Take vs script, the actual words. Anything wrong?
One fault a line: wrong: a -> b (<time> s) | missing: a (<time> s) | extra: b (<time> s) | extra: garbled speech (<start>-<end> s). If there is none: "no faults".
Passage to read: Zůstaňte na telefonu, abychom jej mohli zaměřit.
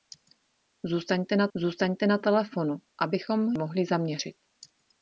extra: zůstaňte na (1.6 s)
missing: jej (3.5 s)